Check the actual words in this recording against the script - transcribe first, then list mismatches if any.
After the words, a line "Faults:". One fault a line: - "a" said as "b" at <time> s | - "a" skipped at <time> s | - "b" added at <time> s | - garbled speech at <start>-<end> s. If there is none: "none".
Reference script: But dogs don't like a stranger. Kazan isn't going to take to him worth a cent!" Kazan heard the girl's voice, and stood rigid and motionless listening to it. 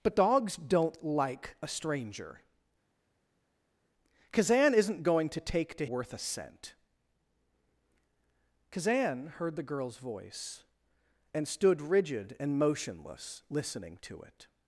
But dogs don't like a stranger. Kazan isn't going to take to worth a cent!" Kazan heard the girl's voice, and stood rigid and motionless listening to it.
Faults:
- "him" skipped at 5.9 s